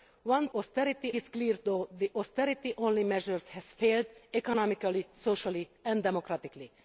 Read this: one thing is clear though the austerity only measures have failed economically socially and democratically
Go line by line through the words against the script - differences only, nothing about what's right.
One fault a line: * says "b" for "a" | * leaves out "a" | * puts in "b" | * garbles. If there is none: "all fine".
* says "austerity" for "thing"